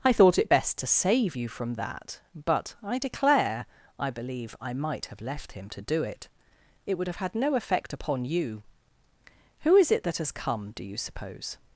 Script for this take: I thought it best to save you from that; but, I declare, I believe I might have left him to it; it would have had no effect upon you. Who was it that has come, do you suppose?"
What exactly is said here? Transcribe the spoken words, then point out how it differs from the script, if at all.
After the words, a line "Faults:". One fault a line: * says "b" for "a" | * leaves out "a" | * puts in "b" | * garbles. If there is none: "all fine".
I thought it best to save you from that; but, I declare, I believe I might have left him to do it; it would have had no effect upon you. Who is it that has come, do you suppose?"
Faults:
* puts in "do"
* says "is" for "was"